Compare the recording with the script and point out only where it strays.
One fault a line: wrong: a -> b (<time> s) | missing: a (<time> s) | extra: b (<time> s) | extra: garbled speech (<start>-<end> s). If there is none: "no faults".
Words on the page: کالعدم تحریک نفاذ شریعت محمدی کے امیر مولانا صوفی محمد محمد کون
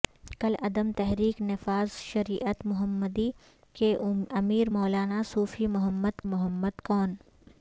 no faults